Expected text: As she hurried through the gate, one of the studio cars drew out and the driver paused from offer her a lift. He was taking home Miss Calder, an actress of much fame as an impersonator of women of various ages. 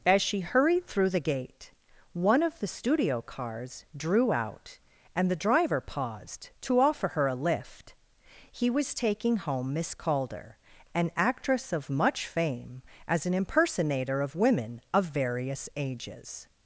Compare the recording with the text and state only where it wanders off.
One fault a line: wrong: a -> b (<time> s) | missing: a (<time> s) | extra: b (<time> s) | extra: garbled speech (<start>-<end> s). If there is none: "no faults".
wrong: from -> to (6.6 s)